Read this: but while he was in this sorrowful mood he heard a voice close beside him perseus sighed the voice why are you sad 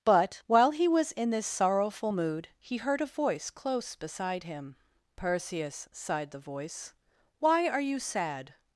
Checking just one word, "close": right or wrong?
right